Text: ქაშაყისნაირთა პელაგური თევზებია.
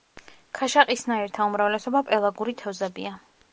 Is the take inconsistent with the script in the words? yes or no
yes